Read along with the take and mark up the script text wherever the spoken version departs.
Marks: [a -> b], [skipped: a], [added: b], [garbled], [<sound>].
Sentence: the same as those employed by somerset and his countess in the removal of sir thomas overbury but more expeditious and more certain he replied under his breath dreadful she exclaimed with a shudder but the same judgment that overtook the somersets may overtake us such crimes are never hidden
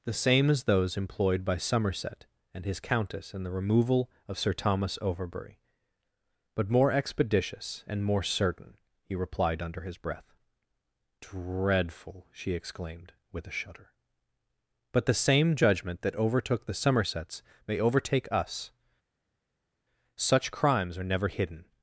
the same as those employed by somerset and his countess in the removal of sir thomas overbury but more expeditious and more certain he replied under his breath dreadful she exclaimed with a shudder but the same judgment that overtook the somersets may overtake us such crimes are never hidden